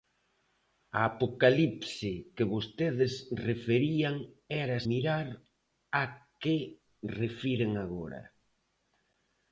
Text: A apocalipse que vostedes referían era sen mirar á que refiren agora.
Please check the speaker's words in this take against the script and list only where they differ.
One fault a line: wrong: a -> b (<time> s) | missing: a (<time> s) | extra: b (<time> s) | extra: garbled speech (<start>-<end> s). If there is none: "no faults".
missing: sen (4.8 s)